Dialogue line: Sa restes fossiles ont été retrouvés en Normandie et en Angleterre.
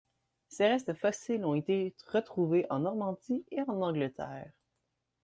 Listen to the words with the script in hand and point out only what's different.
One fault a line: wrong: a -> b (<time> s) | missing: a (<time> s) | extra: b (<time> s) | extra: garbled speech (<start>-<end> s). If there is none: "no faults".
wrong: Sa -> Ses (0.5 s)